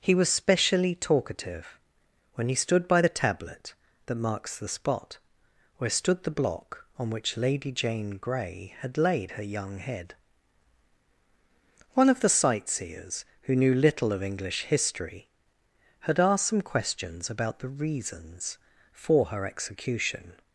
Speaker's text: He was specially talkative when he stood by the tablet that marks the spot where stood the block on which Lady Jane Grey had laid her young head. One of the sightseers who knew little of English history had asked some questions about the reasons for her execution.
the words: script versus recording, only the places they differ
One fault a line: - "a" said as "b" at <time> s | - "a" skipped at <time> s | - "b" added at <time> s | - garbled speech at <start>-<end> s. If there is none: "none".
none